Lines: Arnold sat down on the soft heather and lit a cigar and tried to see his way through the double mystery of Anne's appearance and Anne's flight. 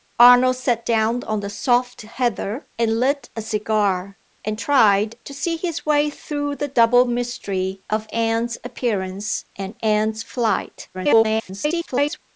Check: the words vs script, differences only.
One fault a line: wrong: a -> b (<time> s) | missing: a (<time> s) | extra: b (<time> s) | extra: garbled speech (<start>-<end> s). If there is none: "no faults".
extra: garbled speech (10.9-12.2 s)